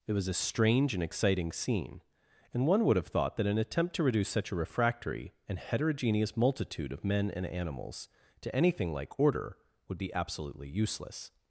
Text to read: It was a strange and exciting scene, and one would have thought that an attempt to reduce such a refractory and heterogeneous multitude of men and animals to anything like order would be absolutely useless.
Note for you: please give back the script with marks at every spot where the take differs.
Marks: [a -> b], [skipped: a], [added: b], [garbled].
It was a strange and exciting scene, and one would have thought that an attempt to reduce such a refractory and heterogeneous multitude of men and animals to anything like order would be absolutely useless.